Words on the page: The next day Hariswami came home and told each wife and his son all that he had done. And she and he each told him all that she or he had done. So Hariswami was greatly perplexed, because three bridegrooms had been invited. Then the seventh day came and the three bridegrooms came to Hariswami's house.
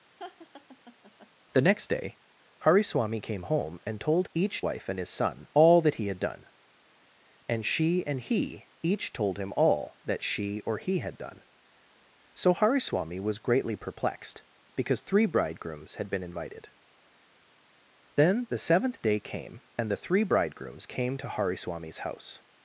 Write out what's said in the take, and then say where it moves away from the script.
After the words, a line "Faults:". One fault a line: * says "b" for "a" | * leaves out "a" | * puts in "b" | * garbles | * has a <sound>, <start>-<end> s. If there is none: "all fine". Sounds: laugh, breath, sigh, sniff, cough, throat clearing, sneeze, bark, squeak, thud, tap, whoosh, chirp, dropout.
The next day Hariswami came home and told each wife and his son all that he had done. And she and he each told him all that she or he had done. So Hariswami was greatly perplexed, because three bridegrooms had been invited. Then the seventh day came and the three bridegrooms came to Hariswami's house.
Faults:
* has a laugh, 0.2-1.3 s